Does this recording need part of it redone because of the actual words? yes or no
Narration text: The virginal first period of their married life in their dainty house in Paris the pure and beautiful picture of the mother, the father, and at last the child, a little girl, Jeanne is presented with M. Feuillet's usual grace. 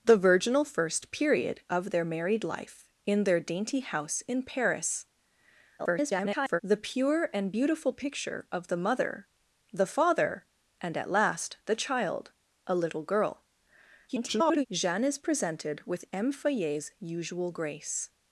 yes